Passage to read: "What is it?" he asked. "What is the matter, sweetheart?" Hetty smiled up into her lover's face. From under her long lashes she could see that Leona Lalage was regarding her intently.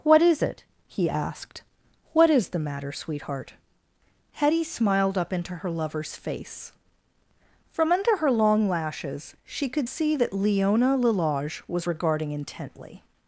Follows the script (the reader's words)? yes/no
no